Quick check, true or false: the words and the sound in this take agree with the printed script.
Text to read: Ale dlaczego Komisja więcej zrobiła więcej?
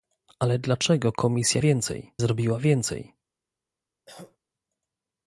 false